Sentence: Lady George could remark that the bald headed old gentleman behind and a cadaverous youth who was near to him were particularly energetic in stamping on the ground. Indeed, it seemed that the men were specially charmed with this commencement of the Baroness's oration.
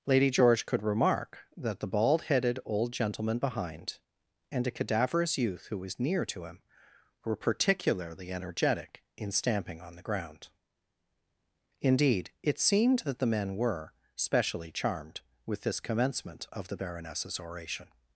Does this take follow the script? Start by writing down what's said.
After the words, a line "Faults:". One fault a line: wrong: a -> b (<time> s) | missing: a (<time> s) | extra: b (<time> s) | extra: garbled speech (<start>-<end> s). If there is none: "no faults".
Lady George could remark that the bald headed old gentleman behind and a cadaverous youth who was near to him were particularly energetic in stamping on the ground. Indeed, it seemed that the men were specially charmed with this commencement of the Baroness's oration.
Faults:
no faults